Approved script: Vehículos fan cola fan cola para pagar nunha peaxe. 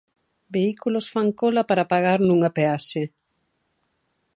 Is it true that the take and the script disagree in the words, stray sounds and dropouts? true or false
true